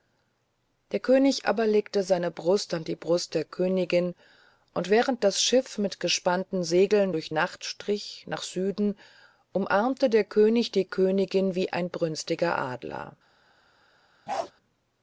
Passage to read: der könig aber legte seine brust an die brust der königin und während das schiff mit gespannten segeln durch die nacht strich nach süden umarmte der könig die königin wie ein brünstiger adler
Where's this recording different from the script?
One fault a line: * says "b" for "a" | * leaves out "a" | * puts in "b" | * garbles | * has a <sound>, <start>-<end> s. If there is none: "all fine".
* leaves out "die"
* has a bark, 14.3-14.5 s